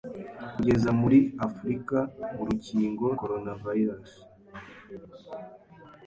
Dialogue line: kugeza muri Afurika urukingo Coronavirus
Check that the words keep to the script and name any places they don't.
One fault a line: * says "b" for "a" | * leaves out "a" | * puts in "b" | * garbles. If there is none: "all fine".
all fine